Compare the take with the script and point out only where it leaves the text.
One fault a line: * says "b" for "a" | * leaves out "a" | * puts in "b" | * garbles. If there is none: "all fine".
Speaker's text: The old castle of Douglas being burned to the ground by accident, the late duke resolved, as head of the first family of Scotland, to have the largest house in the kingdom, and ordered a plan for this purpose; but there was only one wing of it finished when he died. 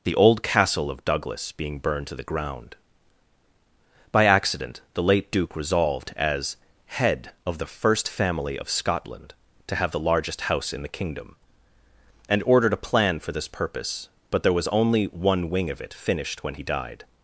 all fine